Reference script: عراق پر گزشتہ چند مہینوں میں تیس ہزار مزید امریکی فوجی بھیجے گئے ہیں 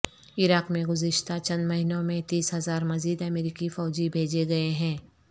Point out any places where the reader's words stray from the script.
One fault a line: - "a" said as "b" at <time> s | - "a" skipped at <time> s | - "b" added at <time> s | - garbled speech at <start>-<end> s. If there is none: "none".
- "پر" said as "میں" at 0.7 s